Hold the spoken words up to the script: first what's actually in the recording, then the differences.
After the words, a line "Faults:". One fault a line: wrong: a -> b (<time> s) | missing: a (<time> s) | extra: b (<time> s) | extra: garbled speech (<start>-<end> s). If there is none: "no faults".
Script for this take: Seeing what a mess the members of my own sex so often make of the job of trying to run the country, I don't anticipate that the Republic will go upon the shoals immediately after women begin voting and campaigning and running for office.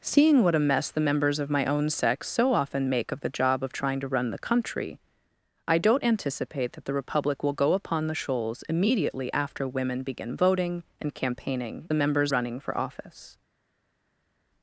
Seeing what a mess the members of my own sex so often make of the job of trying to run the country, I don't anticipate that the Republic will go upon the shoals immediately after women begin voting and campaigning members running for office.
Faults:
wrong: and -> members (11.9 s)